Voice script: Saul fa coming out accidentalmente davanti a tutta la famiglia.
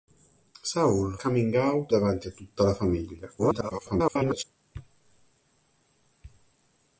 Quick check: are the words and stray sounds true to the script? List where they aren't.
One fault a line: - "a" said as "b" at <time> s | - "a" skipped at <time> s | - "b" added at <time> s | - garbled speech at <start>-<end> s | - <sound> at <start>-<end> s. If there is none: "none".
- "fa" skipped at 1.1 s
- "accidentalmente" skipped at 1.9 s
- garbled speech at 3.4-4.4 s